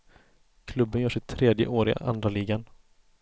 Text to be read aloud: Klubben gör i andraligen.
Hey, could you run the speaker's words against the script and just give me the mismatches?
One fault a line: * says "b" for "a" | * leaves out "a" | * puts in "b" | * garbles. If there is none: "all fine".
* puts in "sitt tredje år"